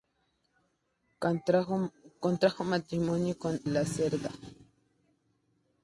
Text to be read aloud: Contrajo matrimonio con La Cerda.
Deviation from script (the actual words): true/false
false